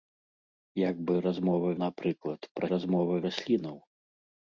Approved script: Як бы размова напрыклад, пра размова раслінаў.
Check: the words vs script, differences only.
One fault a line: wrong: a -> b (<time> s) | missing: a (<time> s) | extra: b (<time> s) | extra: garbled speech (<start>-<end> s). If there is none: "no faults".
no faults